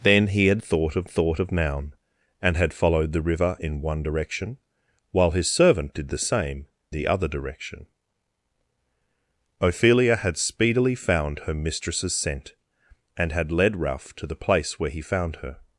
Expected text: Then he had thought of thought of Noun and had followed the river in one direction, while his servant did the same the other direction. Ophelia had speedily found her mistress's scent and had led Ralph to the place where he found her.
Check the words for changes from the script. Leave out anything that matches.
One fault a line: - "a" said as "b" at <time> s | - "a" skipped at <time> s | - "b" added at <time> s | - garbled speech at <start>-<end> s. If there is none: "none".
none